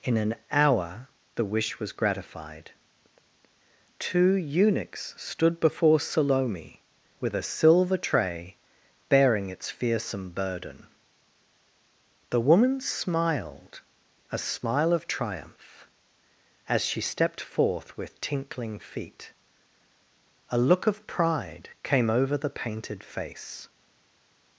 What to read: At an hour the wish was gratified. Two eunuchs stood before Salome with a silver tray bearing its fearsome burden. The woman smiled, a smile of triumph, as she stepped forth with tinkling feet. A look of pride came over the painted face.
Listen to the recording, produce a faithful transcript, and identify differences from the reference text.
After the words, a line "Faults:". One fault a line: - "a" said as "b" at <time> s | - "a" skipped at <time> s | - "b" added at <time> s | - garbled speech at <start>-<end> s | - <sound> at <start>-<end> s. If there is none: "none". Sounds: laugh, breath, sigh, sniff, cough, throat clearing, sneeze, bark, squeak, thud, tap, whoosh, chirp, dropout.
In an hour the wish was gratified. Two eunuchs stood before Salome with a silver tray bearing its fearsome burden. The woman smiled, a smile of triumph, as she stepped forth with tinkling feet. A look of pride came over the painted face.
Faults:
- "At" said as "In" at 0.0 s